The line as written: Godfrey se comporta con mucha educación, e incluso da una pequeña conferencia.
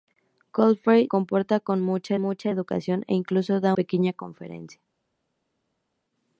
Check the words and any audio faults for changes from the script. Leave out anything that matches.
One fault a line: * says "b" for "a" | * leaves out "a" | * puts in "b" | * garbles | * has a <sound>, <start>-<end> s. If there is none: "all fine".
* leaves out "se"
* puts in "mucha"
* leaves out "una"